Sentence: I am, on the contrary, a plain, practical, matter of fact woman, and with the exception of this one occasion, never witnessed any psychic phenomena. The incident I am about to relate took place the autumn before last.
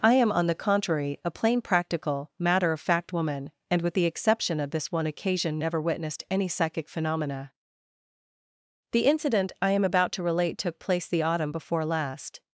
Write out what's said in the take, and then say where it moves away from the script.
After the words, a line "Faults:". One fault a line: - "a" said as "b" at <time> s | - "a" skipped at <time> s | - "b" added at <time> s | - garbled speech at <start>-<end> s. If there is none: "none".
I am, on the contrary, a plain, practical, matter of fact woman, and with the exception of this one occasion, never witnessed any psychic phenomena. The incident I am about to relate took place the autumn before last.
Faults:
none